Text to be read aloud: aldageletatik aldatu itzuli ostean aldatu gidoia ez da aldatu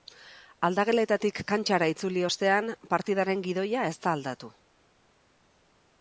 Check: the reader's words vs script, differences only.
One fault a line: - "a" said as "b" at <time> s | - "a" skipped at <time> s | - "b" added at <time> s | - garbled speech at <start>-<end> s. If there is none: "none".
- "aldatu" said as "kantxara" at 1.5 s
- "aldatu" said as "partidaren" at 2.9 s